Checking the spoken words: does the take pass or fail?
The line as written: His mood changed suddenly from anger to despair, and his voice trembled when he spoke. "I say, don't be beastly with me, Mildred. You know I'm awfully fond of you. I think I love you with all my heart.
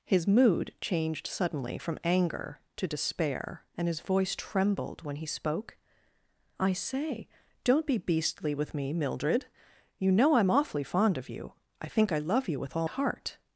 fail